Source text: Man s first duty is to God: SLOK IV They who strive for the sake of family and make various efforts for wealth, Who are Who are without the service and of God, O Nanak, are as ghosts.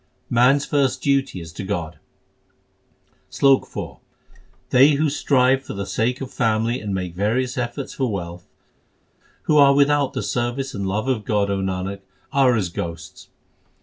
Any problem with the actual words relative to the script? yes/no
yes